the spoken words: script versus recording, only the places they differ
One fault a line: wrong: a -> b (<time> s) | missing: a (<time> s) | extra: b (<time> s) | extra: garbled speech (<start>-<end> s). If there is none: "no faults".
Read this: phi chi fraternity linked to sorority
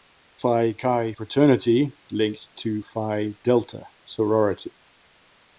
extra: phi delta (2.8 s)